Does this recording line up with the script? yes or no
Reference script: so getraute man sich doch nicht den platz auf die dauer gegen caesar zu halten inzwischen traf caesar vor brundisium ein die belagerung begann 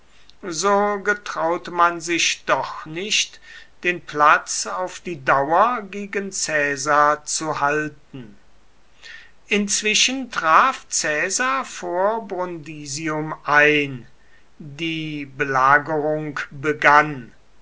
yes